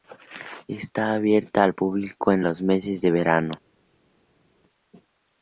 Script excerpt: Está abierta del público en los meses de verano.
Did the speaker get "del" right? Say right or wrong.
wrong